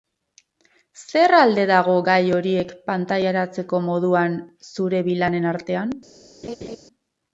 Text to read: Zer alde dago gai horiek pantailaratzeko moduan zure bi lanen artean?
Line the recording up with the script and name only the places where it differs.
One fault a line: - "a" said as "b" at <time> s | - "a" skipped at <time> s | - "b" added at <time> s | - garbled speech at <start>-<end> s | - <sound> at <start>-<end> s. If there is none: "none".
- laugh at 6.4-6.8 s